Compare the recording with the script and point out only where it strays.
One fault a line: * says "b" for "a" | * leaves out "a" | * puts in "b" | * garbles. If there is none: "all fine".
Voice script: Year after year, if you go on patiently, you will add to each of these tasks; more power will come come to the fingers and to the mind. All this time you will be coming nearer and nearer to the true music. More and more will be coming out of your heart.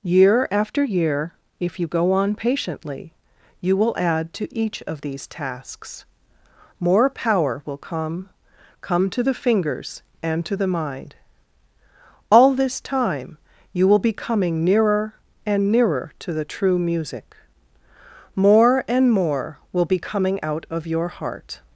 all fine